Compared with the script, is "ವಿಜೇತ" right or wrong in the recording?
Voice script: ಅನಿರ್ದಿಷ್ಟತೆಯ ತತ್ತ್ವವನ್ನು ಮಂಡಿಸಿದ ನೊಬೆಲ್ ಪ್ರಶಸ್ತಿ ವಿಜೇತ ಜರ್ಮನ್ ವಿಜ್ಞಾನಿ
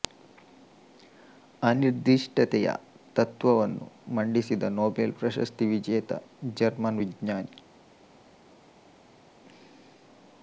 right